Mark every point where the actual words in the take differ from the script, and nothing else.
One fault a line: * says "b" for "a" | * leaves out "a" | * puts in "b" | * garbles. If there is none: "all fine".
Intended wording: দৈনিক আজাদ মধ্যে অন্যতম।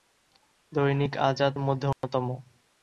all fine